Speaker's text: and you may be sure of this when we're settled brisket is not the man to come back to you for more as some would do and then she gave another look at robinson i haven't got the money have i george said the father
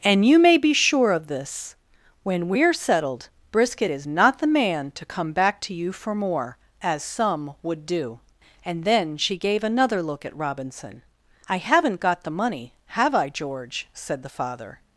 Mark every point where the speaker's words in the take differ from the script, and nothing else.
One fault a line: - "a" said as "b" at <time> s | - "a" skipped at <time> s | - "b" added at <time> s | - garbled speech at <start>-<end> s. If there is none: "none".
none